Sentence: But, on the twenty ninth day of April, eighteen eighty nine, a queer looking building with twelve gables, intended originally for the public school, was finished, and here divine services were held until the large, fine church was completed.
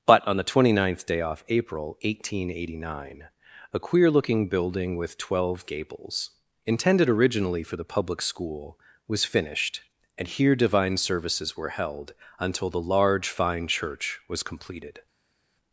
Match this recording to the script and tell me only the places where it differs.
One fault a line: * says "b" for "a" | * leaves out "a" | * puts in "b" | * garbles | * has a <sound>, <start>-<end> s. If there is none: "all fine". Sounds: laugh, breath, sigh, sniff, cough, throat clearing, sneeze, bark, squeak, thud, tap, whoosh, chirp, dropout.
* says "off" for "of"